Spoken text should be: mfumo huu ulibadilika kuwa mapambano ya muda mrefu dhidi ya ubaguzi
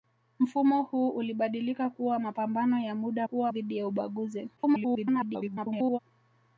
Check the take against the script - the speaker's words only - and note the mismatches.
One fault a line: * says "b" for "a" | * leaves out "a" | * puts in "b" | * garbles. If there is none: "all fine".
* says "kuwa" for "mrefu"
* garbles